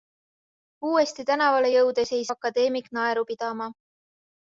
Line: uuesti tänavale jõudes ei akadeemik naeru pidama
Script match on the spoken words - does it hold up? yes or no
yes